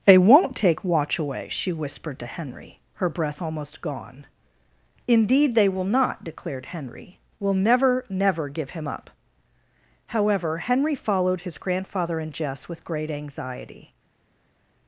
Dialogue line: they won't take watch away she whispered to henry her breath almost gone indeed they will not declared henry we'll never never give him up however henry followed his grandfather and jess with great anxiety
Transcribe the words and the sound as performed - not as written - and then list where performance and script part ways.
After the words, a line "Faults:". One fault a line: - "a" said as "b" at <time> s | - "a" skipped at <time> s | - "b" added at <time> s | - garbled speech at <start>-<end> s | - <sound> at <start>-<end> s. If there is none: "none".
they won't take watch away she whispered to henry her breath almost gone indeed they will not declared henry we'll never never give him up however henry followed his grandfather and jess with great anxiety
Faults:
none